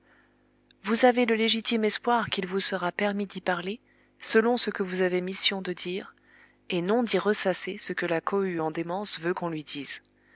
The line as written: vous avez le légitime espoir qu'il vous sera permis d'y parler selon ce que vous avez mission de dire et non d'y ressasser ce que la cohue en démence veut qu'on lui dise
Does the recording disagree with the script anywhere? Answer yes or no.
no